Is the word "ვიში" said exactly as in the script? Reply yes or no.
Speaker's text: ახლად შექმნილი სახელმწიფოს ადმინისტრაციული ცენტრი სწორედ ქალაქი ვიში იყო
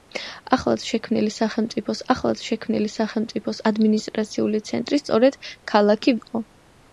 no